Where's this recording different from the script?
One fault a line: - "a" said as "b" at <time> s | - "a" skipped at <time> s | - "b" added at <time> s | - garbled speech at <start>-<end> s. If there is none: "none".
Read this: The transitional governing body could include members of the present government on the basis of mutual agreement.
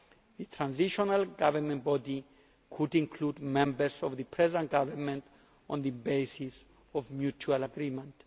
none